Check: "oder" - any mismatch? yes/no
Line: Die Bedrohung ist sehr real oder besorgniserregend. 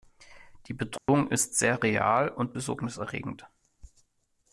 yes